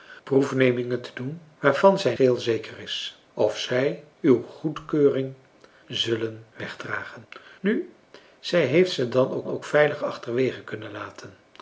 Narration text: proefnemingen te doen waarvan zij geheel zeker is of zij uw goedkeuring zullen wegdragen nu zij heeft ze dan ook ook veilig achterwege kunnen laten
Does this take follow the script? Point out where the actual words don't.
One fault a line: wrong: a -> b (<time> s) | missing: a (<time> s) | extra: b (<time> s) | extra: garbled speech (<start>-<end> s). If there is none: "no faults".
no faults